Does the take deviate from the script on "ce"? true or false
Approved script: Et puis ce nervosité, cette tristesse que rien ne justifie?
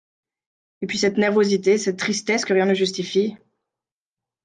true